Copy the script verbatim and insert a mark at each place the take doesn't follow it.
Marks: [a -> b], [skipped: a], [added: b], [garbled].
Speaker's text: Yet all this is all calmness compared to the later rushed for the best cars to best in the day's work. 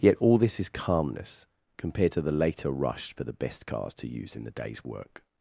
Yet all this is [skipped: all] calmness compared to the later [rushed -> rush] for the best cars to [best -> use] in the day's work.